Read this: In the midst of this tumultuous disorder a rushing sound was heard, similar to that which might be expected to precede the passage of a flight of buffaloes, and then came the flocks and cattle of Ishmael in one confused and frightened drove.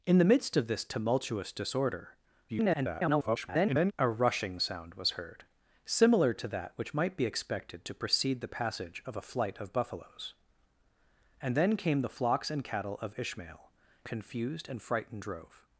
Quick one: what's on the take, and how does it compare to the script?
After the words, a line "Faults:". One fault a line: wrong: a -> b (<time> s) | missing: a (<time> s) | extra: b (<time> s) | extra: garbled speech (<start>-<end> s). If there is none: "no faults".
In the midst of this tumultuous disorder [garbled] a rushing sound was heard, similar to that which might be expected to precede the passage of a flight of buffaloes, and then came the flocks and cattle of Ishmael confused and frightened drove.
Faults:
extra: garbled speech (2.5-3.9 s)
missing: in one (13.7 s)